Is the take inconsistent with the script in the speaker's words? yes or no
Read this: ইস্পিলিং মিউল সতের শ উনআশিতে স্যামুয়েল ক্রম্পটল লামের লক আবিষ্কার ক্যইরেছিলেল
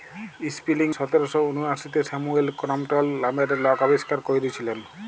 yes